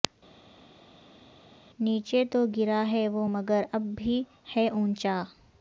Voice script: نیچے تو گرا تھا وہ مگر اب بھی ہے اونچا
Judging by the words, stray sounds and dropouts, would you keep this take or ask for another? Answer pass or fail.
fail